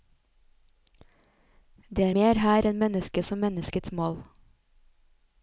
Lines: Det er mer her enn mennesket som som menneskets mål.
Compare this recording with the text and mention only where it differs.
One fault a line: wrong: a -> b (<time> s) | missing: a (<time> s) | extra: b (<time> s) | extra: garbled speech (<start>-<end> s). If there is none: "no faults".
missing: som (3.4 s)